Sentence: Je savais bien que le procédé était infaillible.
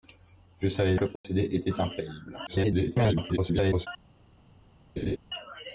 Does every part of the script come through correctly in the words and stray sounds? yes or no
no